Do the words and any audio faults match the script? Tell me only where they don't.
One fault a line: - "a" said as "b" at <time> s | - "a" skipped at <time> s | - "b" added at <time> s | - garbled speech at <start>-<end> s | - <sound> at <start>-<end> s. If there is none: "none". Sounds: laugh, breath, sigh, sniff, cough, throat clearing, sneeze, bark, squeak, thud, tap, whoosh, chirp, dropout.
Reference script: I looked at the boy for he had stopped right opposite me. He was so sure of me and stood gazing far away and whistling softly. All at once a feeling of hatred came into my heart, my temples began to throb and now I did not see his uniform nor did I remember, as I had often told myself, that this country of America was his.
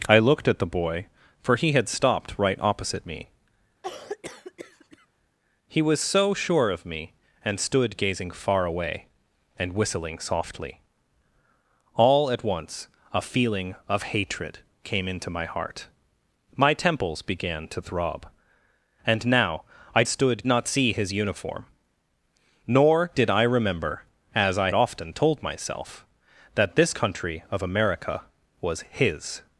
- cough at 3.8-5.1 s
- "did" said as "stood" at 20.1 s
- "had" skipped at 24.7 s